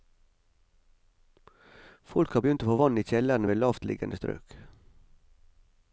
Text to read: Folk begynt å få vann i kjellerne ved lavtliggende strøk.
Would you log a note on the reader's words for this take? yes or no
yes